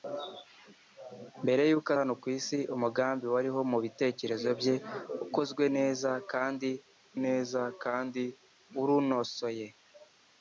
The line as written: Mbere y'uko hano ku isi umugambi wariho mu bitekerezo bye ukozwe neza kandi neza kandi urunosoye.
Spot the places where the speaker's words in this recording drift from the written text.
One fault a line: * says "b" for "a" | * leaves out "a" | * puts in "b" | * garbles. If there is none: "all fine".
all fine